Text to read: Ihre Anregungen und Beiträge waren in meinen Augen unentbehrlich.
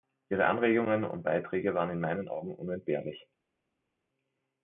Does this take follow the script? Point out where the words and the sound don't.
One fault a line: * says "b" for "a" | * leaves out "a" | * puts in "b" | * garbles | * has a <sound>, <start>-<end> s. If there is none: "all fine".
all fine